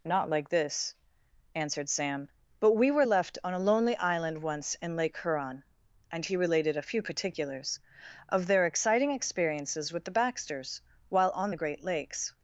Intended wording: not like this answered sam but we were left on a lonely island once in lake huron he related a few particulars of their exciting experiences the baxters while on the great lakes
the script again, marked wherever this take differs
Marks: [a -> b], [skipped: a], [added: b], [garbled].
not like this answered sam but we were left on a lonely island once in lake huron [added: and] he related a few particulars of their exciting experiences [added: with] the baxters while on the great lakes